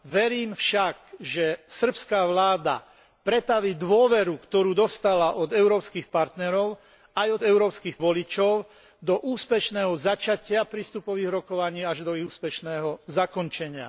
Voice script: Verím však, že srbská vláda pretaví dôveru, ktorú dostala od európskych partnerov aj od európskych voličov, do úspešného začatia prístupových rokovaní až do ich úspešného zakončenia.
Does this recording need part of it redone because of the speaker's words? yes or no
no